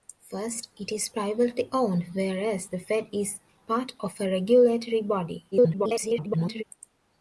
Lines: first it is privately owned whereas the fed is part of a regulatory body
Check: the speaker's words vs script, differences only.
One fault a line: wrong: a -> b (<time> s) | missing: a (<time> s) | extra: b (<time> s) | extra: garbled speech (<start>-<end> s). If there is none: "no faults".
extra: garbled speech (5.5-6.6 s)